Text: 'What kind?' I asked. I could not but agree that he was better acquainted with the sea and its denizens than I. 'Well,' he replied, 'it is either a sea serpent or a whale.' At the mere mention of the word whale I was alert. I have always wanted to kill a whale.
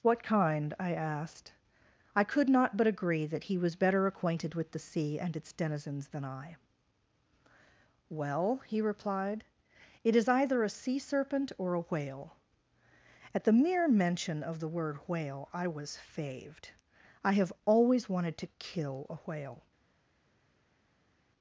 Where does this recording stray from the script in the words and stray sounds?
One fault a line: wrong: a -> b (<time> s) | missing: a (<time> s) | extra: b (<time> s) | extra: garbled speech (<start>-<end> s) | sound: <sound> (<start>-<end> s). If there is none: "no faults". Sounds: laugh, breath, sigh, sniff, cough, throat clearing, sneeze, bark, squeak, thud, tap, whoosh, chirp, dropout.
wrong: alert -> faved (16.0 s)